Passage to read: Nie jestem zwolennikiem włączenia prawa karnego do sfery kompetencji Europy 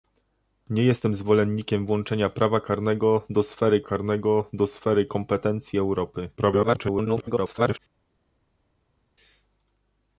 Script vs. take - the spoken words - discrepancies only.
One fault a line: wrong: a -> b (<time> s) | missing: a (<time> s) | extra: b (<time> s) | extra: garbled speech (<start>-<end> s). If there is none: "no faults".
extra: karnego do sfery (3.8 s)
extra: garbled speech (6.4-7.8 s)